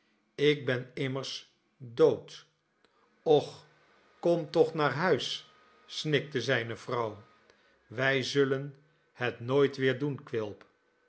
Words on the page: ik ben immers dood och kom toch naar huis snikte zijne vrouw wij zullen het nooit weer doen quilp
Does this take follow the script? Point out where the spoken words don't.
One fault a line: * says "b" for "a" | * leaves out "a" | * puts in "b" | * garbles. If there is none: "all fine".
all fine